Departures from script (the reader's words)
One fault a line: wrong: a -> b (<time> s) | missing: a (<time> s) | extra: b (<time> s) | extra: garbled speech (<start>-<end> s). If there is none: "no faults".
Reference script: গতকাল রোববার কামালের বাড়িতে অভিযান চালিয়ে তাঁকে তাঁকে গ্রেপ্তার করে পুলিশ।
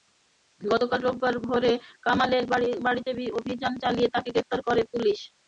extra: ভোরে (1.4 s)
missing: তাঁকে (4.3 s)